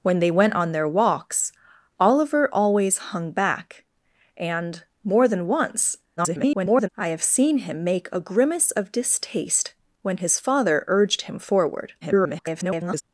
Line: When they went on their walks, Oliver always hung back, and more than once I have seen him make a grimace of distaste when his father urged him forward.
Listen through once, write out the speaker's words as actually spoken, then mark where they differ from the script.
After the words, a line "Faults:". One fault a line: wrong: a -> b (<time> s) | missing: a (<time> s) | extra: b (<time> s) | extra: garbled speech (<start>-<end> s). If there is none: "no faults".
When they went on their walks, Oliver always hung back, and more than once [garbled] I have seen him make a grimace of distaste when his father urged him forward. [garbled]
Faults:
extra: garbled speech (6.2-6.9 s)
extra: garbled speech (12.0-13.0 s)